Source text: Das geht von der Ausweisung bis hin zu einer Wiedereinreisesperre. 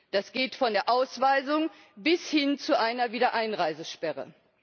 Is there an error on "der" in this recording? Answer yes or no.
no